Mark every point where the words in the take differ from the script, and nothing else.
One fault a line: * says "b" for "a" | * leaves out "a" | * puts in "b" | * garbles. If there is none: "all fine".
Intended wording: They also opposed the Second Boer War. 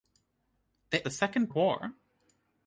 * leaves out "also opposed"
* leaves out "Boer"